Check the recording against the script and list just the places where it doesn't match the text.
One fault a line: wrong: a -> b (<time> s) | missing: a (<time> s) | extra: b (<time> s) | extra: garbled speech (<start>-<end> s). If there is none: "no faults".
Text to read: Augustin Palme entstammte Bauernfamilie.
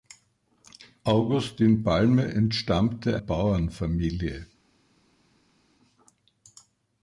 no faults